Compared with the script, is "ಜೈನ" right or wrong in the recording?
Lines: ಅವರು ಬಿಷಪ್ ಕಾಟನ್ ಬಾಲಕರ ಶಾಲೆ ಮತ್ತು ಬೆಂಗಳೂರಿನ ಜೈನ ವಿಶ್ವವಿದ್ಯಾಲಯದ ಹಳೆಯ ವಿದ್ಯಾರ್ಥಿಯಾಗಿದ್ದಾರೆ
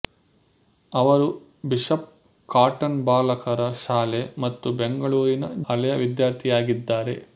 wrong